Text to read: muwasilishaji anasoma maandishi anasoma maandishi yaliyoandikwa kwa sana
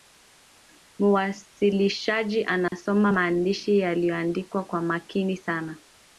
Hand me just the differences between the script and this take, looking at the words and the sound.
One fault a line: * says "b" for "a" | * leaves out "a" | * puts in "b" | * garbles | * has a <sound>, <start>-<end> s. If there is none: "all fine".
* has a dropout, 2.7-2.7 s
* leaves out "anasoma maandishi"
* puts in "makini"